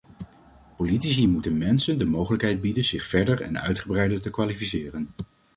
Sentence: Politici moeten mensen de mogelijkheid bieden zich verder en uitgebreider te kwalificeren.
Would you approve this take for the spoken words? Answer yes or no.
yes